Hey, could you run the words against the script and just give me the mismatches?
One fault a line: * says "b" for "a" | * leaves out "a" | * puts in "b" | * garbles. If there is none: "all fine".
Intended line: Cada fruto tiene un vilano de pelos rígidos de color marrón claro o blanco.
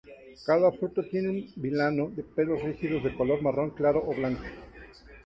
all fine